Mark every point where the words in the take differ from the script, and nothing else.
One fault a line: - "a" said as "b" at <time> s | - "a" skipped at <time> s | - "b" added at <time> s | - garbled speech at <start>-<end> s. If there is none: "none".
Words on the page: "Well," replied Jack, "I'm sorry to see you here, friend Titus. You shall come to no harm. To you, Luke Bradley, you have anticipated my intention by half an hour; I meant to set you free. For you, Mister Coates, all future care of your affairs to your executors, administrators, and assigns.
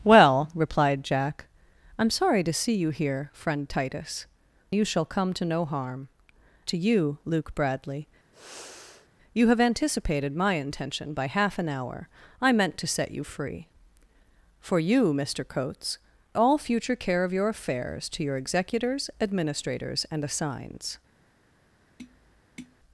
none